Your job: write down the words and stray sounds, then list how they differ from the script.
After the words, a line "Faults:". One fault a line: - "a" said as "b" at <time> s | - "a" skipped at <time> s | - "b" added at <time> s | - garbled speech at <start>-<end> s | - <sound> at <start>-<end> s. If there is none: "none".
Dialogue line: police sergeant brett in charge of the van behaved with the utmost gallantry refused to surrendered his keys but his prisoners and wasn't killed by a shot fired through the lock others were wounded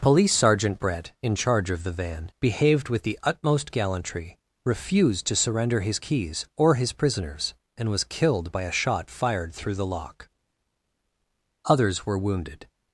police sergeant brett in charge of the van behaved with the utmost gallantry refused to surrender his keys or his prisoners and was killed by a shot fired through the lock others were wounded
Faults:
- "surrendered" said as "surrender" at 5.3 s
- "but" said as "or" at 6.6 s
- "wasn't" said as "was" at 7.9 s